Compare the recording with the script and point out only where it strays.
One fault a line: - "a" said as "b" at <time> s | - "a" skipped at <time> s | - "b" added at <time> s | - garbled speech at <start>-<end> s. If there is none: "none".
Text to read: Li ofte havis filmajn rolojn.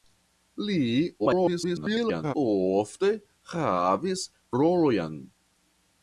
- garbled speech at 1.2-2.3 s
- "filmajn" skipped at 4.3 s